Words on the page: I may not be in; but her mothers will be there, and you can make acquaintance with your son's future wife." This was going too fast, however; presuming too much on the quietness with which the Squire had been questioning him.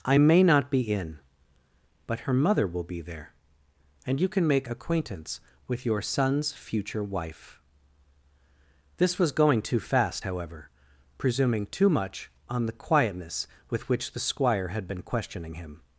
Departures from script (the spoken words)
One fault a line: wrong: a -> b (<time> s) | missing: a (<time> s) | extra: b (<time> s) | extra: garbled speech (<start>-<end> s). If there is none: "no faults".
wrong: mothers -> mother (2.3 s)